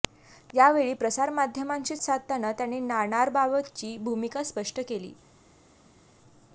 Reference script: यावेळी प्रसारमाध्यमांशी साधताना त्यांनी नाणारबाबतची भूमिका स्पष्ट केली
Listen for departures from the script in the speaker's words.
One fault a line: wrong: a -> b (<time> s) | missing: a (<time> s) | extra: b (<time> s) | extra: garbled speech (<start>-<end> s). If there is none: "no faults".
no faults